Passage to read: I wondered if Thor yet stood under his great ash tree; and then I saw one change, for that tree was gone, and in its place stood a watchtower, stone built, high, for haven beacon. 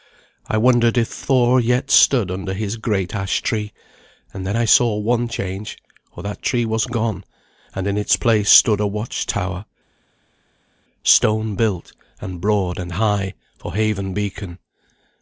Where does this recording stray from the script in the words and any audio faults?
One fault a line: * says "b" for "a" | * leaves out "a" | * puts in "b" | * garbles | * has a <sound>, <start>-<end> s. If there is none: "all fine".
* puts in "and broad and"